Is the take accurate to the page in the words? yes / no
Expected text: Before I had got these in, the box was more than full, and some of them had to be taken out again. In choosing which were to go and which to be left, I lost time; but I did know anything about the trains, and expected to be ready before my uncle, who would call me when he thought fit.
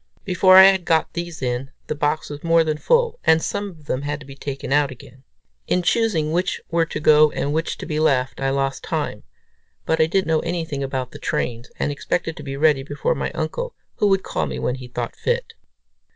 yes